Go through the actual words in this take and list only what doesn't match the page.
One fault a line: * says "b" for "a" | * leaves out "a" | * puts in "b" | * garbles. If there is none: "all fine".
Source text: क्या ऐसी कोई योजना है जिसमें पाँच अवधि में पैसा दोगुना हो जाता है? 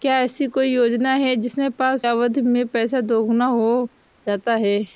all fine